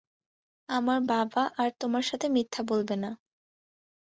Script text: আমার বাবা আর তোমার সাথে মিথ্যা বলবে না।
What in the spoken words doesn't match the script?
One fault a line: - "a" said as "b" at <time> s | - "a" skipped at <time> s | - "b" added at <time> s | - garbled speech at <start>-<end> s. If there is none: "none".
none